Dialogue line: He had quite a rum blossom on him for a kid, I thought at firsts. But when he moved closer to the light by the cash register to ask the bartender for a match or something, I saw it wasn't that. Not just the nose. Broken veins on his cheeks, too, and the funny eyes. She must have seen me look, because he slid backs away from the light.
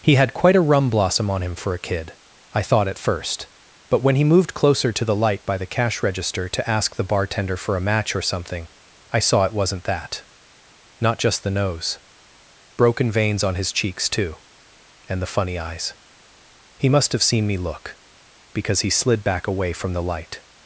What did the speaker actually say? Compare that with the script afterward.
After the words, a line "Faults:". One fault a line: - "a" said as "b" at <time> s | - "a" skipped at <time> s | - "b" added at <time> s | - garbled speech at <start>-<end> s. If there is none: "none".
He had quite a rum blossom on him for a kid, I thought at first. But when he moved closer to the light by the cash register to ask the bartender for a match or something, I saw it wasn't that. Not just the nose. Broken veins on his cheeks, too, and the funny eyes. He must have seen me look, because he slid back away from the light.
Faults:
- "firsts" said as "first" at 3.0 s
- "She" said as "He" at 16.8 s
- "backs" said as "back" at 19.2 s